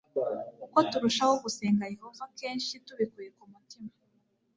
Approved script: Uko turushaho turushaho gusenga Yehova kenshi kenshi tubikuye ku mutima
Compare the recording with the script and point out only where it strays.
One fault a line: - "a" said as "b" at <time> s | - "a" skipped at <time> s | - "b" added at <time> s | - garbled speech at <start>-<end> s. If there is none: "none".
- "turushaho" skipped at 1.3 s
- "kenshi" skipped at 2.7 s